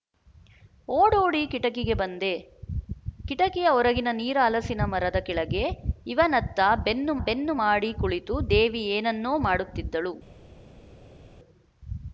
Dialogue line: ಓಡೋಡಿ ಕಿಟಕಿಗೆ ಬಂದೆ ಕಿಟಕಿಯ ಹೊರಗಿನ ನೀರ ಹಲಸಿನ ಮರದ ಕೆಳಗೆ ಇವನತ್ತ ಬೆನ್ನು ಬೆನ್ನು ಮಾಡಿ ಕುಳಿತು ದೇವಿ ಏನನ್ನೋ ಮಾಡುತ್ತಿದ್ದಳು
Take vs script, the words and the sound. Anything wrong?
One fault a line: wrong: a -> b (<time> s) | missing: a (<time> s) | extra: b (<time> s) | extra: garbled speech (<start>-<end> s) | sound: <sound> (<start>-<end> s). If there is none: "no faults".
no faults